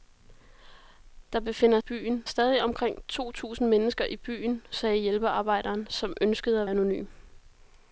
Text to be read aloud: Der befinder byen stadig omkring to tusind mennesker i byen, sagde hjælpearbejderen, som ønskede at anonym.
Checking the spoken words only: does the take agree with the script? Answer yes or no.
yes